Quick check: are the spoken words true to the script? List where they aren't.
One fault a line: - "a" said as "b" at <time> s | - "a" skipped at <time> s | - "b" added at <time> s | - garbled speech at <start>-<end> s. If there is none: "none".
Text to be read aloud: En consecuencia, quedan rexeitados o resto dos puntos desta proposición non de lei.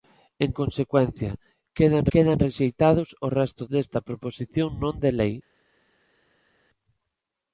- "quedan" added at 2.1 s
- "dos puntos" skipped at 3.6 s